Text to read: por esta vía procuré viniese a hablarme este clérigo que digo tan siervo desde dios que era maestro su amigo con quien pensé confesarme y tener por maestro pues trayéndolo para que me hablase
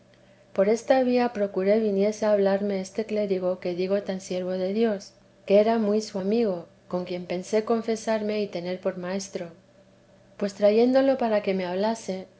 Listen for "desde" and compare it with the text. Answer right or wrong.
wrong